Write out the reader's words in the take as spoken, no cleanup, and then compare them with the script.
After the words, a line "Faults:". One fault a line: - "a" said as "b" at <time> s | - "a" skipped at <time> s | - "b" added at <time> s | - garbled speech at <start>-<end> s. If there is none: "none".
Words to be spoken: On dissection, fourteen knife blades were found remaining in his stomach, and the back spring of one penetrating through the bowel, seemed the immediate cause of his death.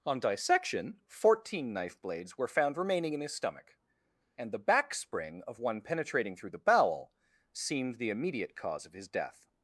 On dissection, fourteen knife blades were found remaining in his stomach, and the back spring of one penetrating through the bowel, seemed the immediate cause of his death.
Faults:
none